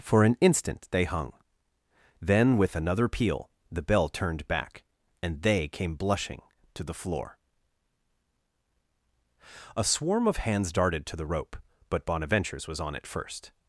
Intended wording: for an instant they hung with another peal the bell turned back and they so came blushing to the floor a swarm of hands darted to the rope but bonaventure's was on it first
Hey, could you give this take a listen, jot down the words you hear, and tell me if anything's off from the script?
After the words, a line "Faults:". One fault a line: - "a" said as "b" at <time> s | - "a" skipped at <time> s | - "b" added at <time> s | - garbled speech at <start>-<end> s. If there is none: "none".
for an instant they hung then with another peal the bell turned back and they came blushing to the floor a swarm of hands darted to the rope but bonaventure's was on it first
Faults:
- "then" added at 2.2 s
- "so" skipped at 5.7 s